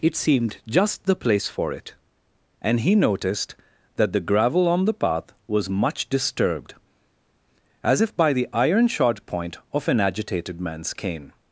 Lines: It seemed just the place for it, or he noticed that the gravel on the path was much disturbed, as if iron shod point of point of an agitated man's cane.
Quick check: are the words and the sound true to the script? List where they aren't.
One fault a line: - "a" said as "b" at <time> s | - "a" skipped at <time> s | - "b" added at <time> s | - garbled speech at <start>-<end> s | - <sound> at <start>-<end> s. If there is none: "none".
- "or" said as "and" at 2.6 s
- "by the" added at 8.2 s
- "point of" skipped at 9.9 s